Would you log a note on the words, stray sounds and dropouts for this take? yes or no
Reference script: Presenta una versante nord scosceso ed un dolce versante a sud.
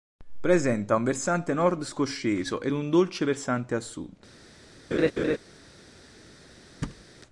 yes